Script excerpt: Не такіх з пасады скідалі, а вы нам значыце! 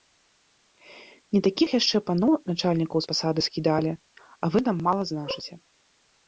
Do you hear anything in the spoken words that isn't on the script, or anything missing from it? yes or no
yes